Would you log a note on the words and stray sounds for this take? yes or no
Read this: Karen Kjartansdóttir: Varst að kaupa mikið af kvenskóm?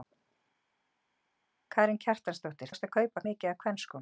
no